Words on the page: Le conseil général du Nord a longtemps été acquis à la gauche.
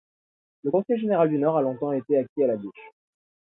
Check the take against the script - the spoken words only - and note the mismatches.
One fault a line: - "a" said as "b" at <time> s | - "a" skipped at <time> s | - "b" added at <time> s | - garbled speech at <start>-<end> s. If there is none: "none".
none